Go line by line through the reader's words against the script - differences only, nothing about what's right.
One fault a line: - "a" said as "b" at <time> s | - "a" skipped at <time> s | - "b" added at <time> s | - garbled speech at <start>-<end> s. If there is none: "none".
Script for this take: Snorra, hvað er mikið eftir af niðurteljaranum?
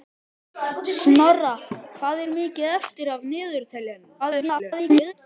- garbled speech at 4.2-5.1 s